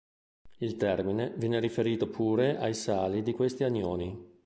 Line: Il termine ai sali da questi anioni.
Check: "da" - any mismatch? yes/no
yes